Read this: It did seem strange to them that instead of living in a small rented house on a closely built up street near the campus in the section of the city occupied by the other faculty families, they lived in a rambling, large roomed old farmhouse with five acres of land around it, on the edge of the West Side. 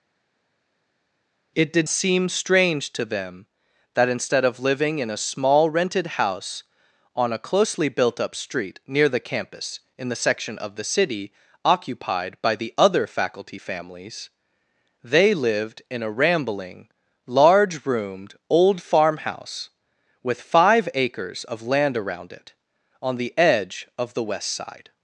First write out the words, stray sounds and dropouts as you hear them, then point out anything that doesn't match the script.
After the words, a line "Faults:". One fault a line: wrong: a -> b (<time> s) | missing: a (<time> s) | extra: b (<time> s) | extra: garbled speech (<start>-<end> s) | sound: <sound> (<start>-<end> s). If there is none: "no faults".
It did seem strange to them that instead of living in a small rented house on a closely built up street near the campus in the section of the city occupied by the other faculty families, they lived in a rambling, large roomed old farmhouse with five acres of land around it, on the edge of the West Side.
Faults:
no faults